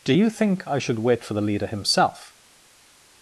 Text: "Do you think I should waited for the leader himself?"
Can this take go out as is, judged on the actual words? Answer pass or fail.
fail